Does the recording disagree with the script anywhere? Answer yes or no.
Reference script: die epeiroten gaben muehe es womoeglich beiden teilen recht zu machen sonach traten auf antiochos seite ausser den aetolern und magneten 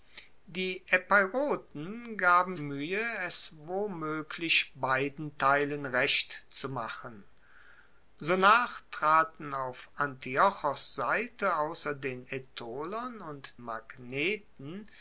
no